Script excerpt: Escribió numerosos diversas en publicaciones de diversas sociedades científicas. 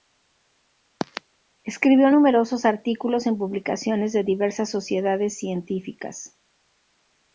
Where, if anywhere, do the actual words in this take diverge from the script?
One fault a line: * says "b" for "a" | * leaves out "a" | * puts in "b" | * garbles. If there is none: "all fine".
* says "artículos" for "diversas"